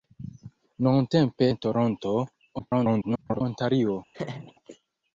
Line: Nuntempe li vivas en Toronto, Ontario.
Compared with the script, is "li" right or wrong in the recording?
wrong